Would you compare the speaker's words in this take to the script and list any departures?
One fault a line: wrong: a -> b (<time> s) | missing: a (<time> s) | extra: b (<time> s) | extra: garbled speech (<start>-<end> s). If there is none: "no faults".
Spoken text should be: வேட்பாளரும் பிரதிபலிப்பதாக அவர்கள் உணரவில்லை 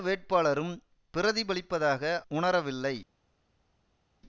missing: அவர்கள் (2.2 s)